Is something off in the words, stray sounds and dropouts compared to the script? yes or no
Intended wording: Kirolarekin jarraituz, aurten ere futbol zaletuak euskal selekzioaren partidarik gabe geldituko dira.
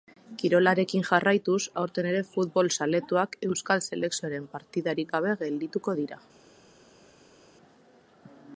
no